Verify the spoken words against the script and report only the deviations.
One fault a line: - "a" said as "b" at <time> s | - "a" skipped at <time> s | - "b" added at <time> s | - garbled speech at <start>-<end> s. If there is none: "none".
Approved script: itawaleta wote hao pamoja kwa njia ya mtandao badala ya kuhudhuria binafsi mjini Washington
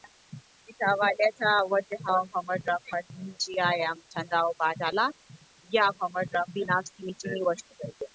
- "kuhudhuria" said as "pamoja" at 5.9 s